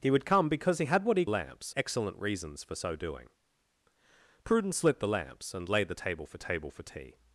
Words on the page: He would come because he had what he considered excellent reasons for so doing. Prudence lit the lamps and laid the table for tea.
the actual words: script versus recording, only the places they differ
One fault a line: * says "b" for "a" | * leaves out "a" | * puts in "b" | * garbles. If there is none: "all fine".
* says "lamps" for "considered"
* puts in "table for"